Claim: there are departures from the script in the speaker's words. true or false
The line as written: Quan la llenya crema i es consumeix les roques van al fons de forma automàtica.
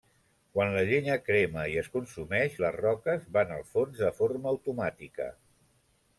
false